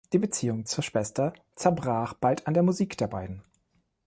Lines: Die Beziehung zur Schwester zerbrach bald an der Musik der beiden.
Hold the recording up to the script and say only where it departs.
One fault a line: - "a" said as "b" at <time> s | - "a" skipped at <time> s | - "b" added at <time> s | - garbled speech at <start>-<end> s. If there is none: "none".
none